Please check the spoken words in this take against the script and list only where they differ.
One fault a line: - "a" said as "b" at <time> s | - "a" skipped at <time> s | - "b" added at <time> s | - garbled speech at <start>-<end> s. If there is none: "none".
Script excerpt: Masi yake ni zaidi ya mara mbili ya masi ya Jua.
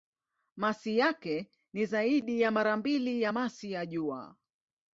none